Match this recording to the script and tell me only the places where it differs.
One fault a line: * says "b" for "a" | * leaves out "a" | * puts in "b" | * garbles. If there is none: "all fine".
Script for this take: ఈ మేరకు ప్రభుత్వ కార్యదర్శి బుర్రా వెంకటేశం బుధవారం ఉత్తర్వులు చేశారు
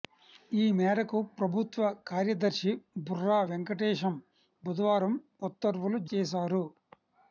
all fine